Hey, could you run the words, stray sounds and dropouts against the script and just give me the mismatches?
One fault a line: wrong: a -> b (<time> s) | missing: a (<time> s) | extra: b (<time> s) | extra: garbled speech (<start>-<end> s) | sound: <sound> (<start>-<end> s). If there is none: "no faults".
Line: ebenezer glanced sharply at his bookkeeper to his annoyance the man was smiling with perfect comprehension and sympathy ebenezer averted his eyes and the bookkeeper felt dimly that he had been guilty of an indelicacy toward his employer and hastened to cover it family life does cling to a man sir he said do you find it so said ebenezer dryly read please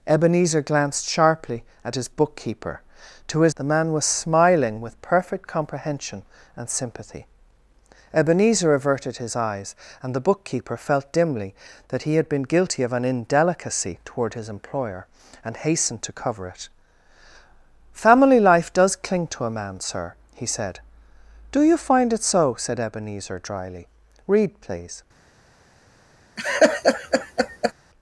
missing: annoyance (3.5 s)
sound: laugh (26.4-27.7 s)